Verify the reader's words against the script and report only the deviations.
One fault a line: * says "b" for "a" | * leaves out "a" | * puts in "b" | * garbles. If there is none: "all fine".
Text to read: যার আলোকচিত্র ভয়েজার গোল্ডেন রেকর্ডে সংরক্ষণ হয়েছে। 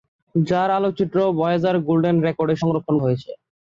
all fine